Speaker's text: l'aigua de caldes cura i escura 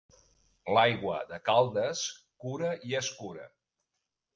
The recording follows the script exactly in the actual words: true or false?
true